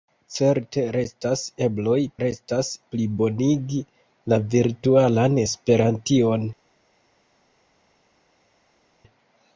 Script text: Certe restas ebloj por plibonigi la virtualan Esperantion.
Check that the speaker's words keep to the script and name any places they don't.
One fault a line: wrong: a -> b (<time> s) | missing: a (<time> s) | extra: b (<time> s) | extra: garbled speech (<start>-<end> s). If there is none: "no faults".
wrong: por -> restas (2.2 s)